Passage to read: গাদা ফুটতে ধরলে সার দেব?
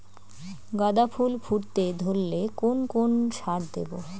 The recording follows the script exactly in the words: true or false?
false